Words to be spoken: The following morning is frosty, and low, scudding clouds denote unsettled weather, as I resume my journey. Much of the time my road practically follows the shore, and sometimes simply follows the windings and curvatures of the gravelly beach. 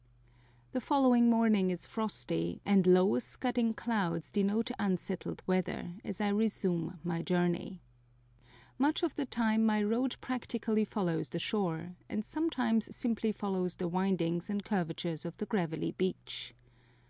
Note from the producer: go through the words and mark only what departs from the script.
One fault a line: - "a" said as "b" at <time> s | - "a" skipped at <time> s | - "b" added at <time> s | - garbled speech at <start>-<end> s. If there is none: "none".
none